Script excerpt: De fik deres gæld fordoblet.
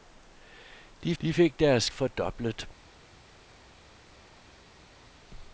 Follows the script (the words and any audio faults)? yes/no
no